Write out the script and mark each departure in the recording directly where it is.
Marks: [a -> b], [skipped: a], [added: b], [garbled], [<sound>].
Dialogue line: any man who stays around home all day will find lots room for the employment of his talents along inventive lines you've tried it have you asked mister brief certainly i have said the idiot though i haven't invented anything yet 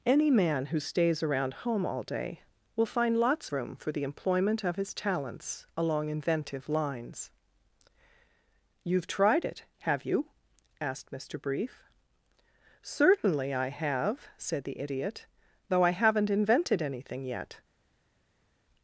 any man who stays around home all day will find lots room for the employment of his talents along inventive lines you've tried it have you asked mister brief certainly i have said the idiot though i haven't invented anything yet